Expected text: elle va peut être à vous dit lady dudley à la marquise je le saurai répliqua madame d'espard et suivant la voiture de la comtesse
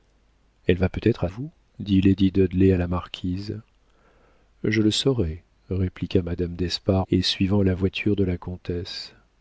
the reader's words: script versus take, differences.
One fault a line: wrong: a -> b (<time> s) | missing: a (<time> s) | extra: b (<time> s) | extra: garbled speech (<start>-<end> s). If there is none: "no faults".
no faults